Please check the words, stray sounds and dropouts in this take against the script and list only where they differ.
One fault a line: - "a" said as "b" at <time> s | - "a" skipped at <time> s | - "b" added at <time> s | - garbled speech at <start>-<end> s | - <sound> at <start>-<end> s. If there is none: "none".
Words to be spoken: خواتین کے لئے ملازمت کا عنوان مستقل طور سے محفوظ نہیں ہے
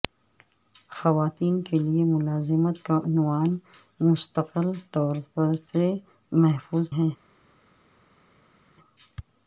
- "نہیں" skipped at 6.9 s